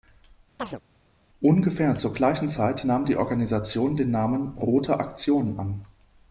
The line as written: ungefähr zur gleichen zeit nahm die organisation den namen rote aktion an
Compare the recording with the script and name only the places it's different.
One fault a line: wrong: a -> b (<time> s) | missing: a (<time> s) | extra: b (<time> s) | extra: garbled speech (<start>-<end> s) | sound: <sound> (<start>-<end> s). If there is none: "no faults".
sound: chirp (0.6-0.8 s)